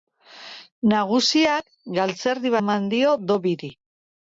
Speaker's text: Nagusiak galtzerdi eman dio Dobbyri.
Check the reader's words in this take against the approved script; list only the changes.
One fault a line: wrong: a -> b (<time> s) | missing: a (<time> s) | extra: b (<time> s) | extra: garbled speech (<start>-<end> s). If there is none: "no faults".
no faults